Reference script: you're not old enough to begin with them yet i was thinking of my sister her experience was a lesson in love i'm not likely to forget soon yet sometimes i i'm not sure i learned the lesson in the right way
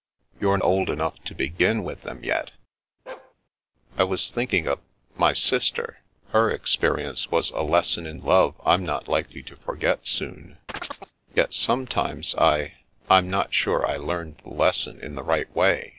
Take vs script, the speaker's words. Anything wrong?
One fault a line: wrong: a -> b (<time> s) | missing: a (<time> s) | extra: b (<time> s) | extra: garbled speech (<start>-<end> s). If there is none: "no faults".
missing: not (0.6 s)